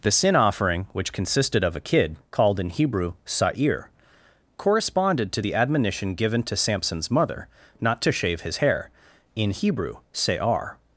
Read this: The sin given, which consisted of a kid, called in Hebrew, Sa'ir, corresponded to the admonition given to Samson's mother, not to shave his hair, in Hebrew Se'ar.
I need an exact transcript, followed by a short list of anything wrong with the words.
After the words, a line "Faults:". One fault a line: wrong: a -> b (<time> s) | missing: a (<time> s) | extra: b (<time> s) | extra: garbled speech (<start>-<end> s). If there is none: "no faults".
The sin offering, which consisted of a kid, called in Hebrew, Sa'ir, corresponded to the admonition given to Samson's mother, not to shave his hair, in Hebrew Se'ar.
Faults:
wrong: given -> offering (0.3 s)